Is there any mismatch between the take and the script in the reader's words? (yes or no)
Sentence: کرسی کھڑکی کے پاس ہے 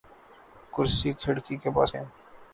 no